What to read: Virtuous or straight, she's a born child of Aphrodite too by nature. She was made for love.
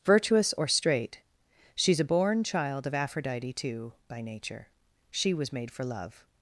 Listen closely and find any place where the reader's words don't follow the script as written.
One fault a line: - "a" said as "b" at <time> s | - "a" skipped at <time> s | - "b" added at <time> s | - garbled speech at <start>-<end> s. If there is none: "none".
none